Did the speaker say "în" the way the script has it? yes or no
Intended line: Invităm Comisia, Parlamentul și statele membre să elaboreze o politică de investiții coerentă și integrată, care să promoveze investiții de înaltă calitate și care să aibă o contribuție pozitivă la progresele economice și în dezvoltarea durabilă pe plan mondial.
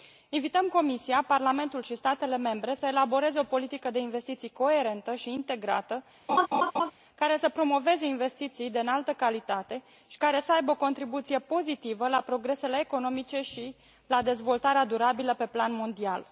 no